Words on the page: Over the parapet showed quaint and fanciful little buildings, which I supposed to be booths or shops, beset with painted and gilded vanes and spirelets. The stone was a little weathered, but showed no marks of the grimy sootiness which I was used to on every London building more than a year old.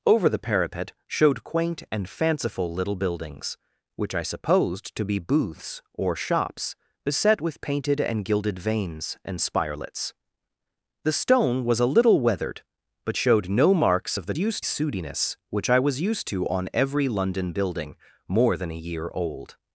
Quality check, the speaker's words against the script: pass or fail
fail